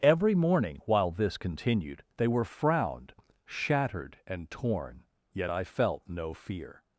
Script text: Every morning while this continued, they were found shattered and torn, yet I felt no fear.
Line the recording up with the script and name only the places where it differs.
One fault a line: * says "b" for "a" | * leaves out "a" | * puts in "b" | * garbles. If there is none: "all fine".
* says "frowned" for "found"